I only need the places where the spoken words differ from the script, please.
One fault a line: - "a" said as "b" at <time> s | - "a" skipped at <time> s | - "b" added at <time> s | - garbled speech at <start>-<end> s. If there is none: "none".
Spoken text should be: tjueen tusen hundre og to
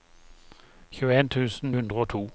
none